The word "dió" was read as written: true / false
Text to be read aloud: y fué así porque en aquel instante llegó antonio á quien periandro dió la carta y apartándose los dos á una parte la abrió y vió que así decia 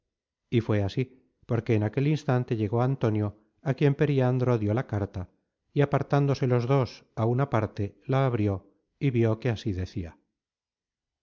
true